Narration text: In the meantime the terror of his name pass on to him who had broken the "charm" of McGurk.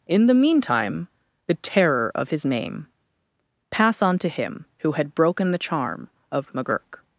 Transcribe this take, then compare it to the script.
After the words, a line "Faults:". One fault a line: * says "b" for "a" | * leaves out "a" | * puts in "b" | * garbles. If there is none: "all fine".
In the meantime the terror of his name pass on to him who had broken the "charm" of McGurk.
Faults:
all fine